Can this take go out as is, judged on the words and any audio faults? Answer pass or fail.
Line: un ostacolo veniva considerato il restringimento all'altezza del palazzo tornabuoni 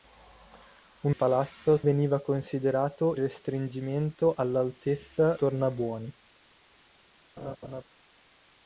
fail